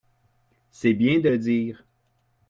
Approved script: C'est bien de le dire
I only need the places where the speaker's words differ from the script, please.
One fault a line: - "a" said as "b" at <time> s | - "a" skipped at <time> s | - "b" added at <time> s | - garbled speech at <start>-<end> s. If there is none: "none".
none